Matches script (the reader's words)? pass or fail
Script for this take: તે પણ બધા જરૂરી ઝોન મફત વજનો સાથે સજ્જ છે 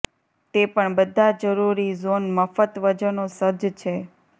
fail